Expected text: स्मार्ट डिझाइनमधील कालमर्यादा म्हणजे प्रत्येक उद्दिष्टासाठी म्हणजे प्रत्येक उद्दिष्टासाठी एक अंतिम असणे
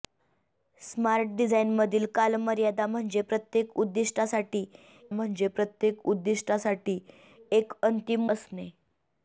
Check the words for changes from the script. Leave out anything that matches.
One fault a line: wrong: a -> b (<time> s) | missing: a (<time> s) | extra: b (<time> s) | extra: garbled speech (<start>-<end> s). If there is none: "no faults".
no faults